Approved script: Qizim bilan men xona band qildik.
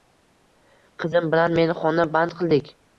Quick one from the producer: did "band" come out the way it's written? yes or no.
yes